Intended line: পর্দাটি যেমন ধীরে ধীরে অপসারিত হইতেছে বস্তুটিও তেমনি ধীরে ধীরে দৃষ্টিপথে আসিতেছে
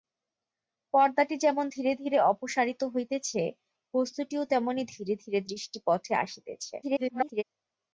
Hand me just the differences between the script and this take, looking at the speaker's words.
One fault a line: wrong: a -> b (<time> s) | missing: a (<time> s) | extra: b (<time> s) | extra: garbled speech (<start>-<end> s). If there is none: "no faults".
extra: garbled speech (6.8-7.4 s)